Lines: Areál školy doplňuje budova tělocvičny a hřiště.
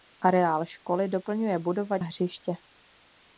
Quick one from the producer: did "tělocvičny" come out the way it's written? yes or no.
no